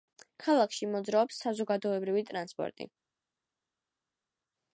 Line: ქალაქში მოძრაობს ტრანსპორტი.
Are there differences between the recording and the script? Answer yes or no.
yes